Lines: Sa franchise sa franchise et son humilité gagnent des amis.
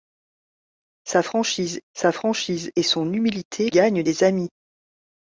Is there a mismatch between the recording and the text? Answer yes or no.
no